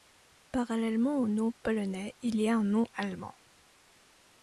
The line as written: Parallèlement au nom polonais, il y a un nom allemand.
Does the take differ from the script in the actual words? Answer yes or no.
no